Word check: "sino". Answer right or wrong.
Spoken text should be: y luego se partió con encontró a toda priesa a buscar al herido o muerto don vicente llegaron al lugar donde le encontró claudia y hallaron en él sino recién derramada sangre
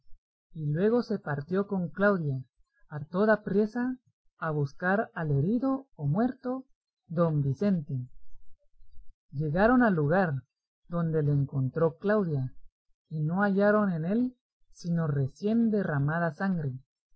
right